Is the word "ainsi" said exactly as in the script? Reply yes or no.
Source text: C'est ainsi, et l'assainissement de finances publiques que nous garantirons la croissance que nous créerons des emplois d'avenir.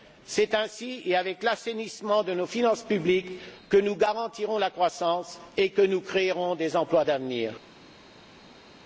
yes